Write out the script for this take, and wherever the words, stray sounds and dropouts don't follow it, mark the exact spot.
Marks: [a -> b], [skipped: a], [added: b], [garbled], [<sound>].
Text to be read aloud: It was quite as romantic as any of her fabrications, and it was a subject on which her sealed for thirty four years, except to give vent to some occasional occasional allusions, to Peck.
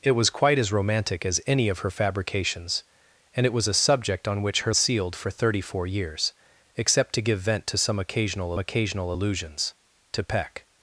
It was quite as romantic as any of her fabrications, and it was a subject on which her sealed for thirty four years, except to give vent to some occasional occasional allusions, to Peck.